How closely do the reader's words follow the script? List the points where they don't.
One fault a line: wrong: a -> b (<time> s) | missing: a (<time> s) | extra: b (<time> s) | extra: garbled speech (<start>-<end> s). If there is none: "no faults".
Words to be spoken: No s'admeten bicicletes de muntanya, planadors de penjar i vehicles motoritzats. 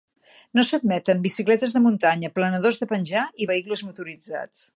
no faults